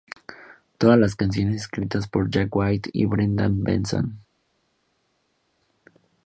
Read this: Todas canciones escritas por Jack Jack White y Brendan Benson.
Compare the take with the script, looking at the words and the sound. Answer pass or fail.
fail